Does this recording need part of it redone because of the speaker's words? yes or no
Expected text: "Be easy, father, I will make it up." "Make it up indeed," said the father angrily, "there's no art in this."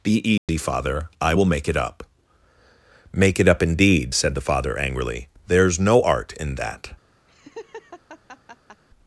yes